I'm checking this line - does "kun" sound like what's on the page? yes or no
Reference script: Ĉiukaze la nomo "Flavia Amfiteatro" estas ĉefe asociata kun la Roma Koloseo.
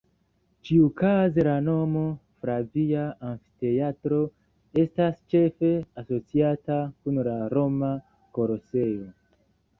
yes